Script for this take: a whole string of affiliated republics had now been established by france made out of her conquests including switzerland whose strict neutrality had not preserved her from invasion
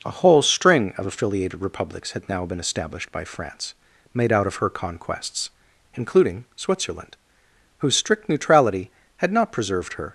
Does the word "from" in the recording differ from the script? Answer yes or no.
yes